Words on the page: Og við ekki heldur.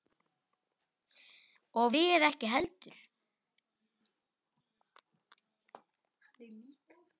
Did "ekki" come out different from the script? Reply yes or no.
no